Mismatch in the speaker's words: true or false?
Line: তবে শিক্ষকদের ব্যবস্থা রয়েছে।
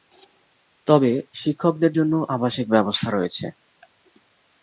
true